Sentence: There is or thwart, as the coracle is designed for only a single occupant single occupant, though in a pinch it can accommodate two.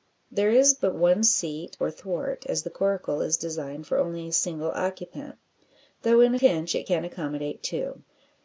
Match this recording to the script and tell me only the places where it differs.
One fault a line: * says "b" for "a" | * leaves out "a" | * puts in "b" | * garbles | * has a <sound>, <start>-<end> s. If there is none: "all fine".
* puts in "but one seat"
* leaves out "single occupant"